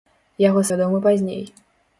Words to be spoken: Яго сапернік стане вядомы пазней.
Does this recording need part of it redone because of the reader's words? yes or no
yes